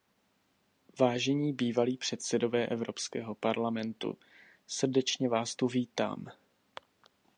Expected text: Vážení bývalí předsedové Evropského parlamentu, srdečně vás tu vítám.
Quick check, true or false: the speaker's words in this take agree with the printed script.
true